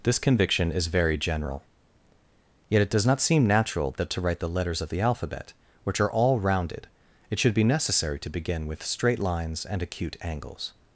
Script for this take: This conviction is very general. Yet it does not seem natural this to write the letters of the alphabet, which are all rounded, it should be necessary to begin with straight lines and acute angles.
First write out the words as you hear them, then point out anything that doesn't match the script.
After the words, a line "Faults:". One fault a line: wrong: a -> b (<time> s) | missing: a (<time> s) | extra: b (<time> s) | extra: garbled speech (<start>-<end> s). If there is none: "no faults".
This conviction is very general. Yet it does not seem natural that to write the letters of the alphabet, which are all rounded, it should be necessary to begin with straight lines and acute angles.
Faults:
wrong: this -> that (4.0 s)